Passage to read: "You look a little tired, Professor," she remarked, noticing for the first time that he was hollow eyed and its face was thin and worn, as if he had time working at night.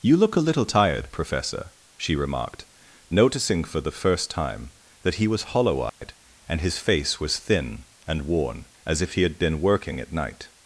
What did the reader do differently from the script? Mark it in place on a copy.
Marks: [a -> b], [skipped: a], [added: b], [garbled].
"You look a little tired, Professor," she remarked, noticing for the first time that he was hollow eyed and [its -> his] face was thin and worn, as if he had [time -> been] working at night.